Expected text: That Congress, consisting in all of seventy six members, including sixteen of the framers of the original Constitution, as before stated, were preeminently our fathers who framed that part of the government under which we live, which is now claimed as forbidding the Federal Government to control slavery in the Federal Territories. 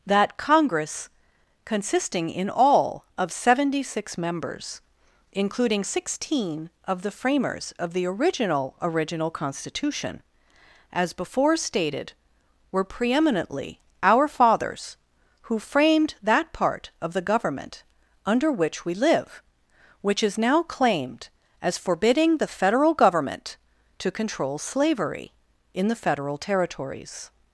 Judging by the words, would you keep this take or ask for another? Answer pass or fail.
fail